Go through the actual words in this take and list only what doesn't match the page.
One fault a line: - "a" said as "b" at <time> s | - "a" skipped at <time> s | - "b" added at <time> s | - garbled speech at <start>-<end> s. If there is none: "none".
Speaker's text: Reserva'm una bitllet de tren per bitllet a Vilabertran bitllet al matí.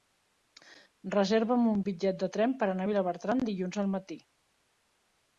- "una" said as "un" at 1.7 s
- "bitllet" said as "anar" at 2.7 s
- "bitllet" said as "dilluns" at 3.5 s